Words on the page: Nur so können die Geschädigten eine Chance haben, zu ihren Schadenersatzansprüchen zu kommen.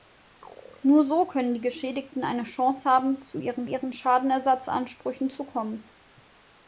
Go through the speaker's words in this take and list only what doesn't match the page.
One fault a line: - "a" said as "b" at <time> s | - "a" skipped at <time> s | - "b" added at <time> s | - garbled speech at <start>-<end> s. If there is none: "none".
- "ihren" added at 3.6 s